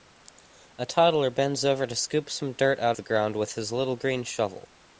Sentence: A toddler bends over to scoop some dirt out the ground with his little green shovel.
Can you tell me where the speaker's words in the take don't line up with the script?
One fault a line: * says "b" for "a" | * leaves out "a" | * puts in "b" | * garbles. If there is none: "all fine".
all fine